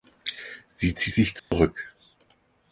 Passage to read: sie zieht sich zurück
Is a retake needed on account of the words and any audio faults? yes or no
yes